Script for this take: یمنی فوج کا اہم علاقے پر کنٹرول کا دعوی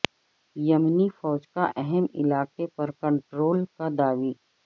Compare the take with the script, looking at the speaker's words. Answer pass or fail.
pass